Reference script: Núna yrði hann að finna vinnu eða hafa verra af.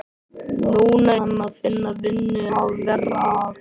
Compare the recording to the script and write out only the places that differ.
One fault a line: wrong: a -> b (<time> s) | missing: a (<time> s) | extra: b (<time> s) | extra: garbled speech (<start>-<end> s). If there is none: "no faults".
missing: yrði (1.2 s)
missing: eða (2.5 s)